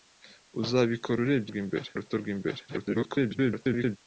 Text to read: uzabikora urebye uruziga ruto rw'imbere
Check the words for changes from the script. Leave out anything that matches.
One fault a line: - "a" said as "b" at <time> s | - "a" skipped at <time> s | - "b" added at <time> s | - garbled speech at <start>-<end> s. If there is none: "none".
- "uruziga" said as "rw'imbere" at 1.5 s
- garbled speech at 2.7-4.0 s